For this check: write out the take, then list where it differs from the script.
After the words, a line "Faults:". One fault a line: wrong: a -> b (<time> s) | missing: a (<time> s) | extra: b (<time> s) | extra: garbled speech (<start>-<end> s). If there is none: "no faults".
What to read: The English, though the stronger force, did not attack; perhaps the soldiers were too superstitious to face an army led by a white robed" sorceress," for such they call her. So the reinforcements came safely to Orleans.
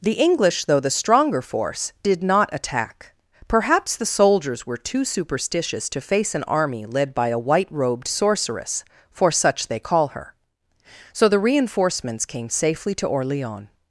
The English, though the stronger force, did not attack; perhaps the soldiers were too superstitious to face an army led by a white robed" sorceress," for such they call her. So the reinforcements came safely to Orleans.
Faults:
no faults